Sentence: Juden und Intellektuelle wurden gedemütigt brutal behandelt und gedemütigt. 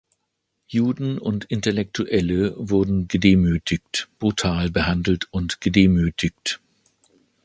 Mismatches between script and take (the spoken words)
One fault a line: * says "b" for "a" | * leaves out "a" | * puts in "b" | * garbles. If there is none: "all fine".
all fine